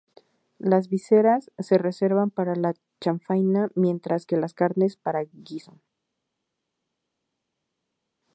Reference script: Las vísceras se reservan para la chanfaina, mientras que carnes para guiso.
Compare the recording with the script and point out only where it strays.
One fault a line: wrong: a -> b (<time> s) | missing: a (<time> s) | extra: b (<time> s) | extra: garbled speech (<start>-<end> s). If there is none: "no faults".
extra: las (4.4 s)